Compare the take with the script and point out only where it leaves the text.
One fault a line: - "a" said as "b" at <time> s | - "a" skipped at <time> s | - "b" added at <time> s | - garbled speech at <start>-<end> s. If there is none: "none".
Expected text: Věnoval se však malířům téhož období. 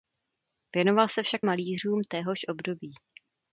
none